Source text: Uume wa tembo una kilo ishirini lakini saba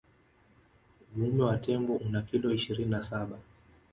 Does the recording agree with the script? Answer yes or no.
no